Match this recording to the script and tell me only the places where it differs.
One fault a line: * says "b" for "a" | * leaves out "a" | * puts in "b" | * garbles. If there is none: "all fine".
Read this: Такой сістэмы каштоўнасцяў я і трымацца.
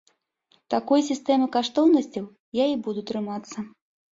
* puts in "буду"